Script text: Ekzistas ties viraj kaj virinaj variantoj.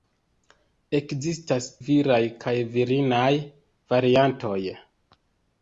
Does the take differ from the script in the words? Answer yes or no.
yes